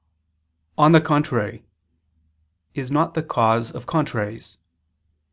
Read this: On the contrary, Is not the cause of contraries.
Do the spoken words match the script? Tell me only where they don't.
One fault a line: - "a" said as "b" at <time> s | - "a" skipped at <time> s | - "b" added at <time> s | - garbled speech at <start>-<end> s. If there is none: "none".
none